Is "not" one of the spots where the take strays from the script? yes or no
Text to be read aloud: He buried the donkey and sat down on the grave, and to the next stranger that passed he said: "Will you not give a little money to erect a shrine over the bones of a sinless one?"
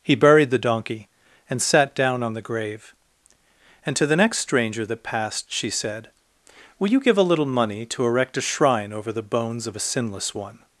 yes